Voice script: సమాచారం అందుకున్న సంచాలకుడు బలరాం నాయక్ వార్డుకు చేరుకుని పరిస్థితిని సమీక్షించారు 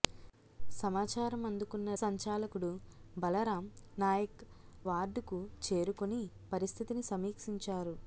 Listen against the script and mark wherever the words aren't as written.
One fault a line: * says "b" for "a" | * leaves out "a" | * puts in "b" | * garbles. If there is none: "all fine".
all fine